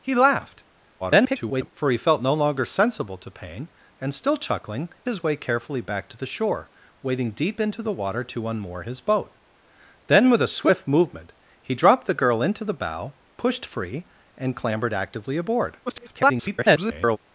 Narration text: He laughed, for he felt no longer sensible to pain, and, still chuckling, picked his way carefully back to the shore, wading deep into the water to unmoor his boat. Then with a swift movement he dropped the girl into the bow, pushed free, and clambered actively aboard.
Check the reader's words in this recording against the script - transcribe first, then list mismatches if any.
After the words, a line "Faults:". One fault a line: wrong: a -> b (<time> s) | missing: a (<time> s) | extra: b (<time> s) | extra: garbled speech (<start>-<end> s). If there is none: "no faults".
He laughed, [garbled] for he felt no longer sensible to pain, and, still chuckling, his way carefully back to the shore, wading deep into the water to unmoor his boat. Then with a swift movement he dropped the girl into the bow, pushed free, and clambered actively aboard. [garbled]
Faults:
extra: garbled speech (1.0-1.7 s)
missing: picked (4.9 s)
extra: garbled speech (15.9-17.2 s)